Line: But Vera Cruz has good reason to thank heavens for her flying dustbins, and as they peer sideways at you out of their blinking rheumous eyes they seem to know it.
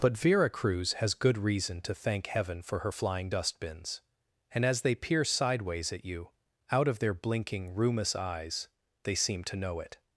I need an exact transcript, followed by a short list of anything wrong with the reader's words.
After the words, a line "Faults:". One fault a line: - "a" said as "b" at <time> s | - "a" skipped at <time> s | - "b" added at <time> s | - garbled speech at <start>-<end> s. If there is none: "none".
But Vera Cruz has good reason to thank heaven for her flying dustbins, and as they peer sideways at you out of their blinking rheumous eyes they seem to know it.
Faults:
- "heavens" said as "heaven" at 2.2 s